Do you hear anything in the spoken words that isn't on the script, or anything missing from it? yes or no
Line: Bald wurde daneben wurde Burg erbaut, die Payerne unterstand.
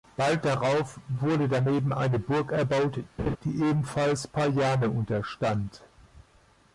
yes